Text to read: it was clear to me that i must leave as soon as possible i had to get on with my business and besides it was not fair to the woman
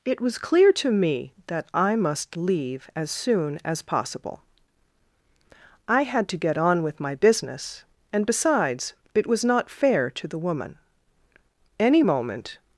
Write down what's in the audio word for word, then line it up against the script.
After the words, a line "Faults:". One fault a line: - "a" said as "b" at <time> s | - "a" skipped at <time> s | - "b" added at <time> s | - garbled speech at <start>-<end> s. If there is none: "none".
it was clear to me that i must leave as soon as possible i had to get on with my business and besides it was not fair to the woman any moment
Faults:
- "any moment" added at 11.8 s